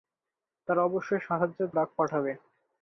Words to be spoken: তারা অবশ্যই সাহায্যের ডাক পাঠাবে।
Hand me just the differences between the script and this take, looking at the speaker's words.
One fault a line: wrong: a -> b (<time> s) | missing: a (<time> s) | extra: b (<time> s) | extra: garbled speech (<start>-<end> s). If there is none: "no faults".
no faults